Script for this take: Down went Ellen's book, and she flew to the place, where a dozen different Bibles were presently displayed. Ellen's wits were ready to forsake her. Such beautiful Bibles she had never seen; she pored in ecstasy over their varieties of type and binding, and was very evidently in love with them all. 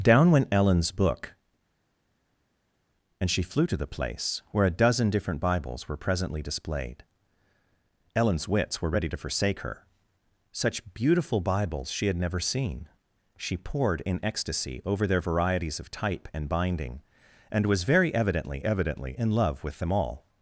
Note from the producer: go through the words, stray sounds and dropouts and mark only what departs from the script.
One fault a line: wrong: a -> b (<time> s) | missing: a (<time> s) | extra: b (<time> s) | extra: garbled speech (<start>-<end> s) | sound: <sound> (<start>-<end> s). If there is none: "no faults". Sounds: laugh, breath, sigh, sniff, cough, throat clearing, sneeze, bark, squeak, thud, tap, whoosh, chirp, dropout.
extra: evidently (18.6 s)